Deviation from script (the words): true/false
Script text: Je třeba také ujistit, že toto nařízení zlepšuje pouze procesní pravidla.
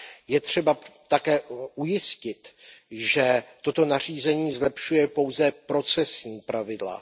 false